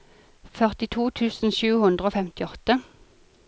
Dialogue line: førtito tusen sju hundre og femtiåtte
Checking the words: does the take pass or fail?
pass